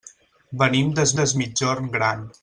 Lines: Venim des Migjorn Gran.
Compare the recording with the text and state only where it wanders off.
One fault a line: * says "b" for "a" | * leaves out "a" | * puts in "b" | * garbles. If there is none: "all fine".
* puts in "des"